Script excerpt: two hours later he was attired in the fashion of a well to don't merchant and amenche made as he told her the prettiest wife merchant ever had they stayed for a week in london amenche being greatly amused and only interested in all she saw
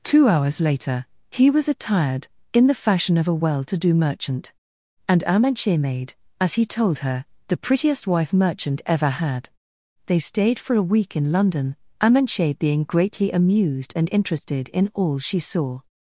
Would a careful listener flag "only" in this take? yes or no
yes